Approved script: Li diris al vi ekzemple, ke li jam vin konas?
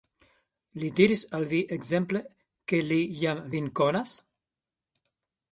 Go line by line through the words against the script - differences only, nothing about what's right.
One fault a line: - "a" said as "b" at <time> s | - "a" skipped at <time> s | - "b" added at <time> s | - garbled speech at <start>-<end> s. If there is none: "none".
none